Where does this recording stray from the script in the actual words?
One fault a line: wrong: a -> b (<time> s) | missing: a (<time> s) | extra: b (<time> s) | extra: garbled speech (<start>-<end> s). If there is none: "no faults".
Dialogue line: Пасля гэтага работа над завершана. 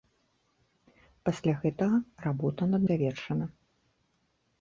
no faults